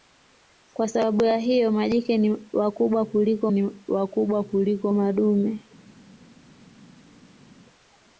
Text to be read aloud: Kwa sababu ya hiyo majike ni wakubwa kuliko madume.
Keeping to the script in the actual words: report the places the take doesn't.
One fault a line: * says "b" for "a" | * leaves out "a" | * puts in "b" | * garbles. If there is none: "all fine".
* puts in "ni wakubwa kuliko"